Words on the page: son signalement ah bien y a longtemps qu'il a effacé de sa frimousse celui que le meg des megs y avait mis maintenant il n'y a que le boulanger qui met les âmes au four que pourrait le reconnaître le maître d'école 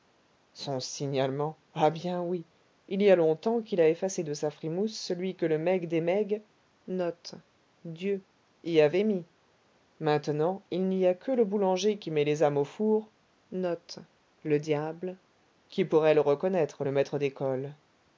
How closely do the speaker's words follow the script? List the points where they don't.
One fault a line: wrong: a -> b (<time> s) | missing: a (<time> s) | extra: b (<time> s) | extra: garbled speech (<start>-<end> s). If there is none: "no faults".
extra: oui il (2.2 s)
wrong: que -> qui (15.7 s)